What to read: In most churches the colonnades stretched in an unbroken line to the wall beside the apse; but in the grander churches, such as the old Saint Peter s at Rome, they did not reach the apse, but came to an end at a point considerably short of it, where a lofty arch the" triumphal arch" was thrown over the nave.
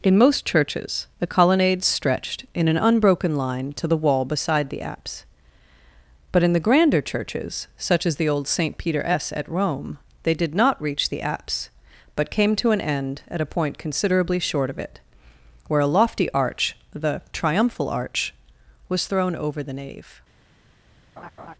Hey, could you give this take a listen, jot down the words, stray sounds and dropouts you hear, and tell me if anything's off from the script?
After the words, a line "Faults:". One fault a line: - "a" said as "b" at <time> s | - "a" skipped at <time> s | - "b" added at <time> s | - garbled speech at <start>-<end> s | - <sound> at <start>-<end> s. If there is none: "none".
In most churches the colonnades stretched in an unbroken line to the wall beside the apse; but in the grander churches, such as the old Saint Peter s at Rome, they did not reach the apse, but came to an end at a point considerably short of it, where a lofty arch the" triumphal arch" was thrown over the nave.
Faults:
- laugh at 21.2-21.5 s